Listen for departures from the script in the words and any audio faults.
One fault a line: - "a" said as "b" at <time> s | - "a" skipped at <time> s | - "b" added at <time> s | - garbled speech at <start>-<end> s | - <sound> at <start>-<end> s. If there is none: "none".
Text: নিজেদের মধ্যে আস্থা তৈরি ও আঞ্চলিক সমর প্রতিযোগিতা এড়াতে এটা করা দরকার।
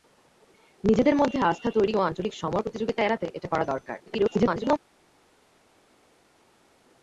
- garbled speech at 4.1-4.8 s